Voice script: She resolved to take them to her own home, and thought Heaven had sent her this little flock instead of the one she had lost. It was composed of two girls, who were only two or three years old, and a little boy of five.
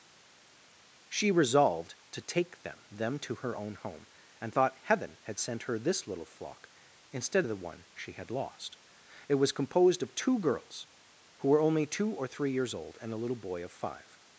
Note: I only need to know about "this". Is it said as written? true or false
true